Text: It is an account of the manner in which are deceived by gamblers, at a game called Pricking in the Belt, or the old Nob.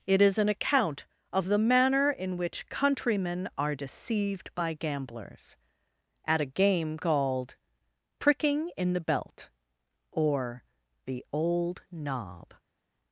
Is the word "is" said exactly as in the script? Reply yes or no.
yes